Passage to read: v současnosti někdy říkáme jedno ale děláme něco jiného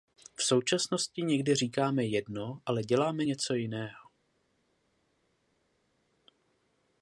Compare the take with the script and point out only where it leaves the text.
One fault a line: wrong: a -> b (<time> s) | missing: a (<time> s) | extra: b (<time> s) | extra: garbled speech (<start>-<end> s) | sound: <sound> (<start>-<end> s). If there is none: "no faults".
no faults